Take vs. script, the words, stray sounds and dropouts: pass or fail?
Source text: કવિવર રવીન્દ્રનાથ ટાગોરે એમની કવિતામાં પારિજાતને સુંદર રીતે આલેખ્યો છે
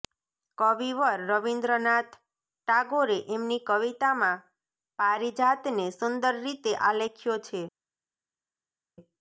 pass